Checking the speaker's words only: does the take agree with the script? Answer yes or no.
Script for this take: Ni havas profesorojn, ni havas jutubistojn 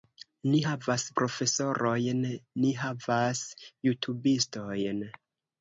yes